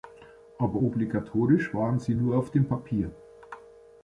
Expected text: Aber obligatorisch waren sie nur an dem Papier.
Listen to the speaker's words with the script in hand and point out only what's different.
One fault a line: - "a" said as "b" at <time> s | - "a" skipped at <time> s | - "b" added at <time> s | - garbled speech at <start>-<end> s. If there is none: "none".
- "an" said as "auf" at 2.4 s